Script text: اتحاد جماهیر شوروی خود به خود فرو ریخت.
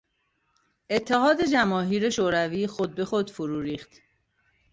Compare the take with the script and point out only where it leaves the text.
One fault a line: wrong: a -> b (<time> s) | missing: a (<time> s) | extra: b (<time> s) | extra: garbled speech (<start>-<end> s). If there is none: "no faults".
no faults